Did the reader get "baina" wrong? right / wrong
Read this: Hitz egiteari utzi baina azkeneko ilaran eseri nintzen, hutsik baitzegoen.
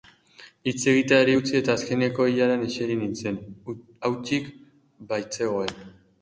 wrong